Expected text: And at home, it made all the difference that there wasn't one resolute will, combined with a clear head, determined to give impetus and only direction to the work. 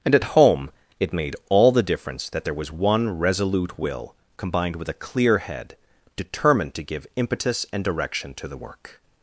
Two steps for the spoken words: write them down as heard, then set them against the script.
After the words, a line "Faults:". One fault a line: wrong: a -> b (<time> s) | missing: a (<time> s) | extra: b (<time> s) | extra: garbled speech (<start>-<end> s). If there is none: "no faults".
And at home, it made all the difference that there was one resolute will, combined with a clear head, determined to give impetus and direction to the work.
Faults:
wrong: wasn't -> was (2.5 s)
missing: only (7.8 s)